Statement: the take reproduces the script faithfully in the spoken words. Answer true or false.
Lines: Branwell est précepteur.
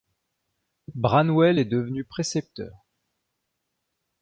false